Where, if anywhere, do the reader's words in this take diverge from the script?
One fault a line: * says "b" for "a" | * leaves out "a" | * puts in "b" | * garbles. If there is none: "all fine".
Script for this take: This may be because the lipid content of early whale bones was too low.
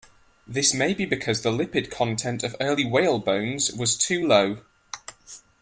all fine